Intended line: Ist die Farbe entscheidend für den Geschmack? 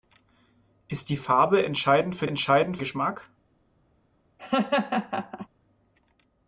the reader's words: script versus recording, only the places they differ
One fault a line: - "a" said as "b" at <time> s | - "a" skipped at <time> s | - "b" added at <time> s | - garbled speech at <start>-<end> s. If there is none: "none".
- "den" said as "entscheidend" at 2.2 s